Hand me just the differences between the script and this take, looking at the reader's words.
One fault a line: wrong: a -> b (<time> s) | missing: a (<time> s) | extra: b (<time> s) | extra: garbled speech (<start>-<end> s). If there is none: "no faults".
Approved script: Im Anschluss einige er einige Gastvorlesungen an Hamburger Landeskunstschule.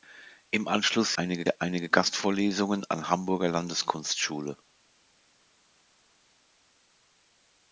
no faults